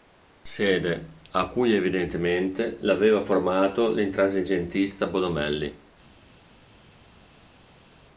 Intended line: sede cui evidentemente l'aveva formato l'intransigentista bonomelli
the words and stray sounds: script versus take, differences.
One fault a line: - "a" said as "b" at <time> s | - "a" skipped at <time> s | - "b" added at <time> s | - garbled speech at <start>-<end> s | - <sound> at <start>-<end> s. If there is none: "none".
- "a" added at 1.3 s